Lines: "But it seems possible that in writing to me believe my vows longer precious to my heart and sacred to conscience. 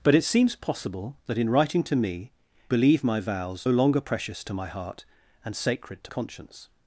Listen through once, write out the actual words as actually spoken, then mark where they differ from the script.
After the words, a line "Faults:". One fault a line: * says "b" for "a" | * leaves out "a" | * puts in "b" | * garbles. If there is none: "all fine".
"But it seems possible that in writing to me believe my vows longer precious to my heart and sacred to conscience.
Faults:
all fine